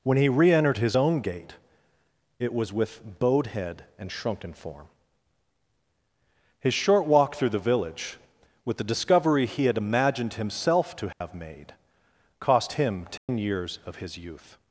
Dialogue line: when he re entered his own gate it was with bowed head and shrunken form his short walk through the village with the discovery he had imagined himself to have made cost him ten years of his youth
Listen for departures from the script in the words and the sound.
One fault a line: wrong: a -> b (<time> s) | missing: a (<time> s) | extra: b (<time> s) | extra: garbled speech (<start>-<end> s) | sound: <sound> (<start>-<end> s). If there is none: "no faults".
sound: dropout (11.1-11.2 s)
sound: dropout (13.2-13.3 s)